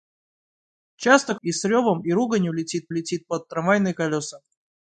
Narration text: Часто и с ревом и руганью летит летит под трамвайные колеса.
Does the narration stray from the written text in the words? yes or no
no